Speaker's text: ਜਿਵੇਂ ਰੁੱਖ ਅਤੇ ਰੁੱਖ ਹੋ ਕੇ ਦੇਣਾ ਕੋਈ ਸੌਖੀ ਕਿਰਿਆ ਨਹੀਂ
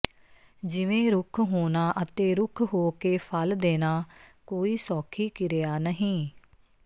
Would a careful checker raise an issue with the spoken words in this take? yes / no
yes